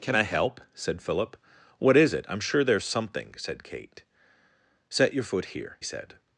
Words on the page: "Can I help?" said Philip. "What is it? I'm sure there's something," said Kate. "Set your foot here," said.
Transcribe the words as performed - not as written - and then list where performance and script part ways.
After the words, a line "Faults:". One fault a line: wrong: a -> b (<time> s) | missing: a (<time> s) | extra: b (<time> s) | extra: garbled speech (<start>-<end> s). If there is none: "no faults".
"Can I help?" said Philip. "What is it? I'm sure there's something," said Kate. "Set your foot here," said.
Faults:
no faults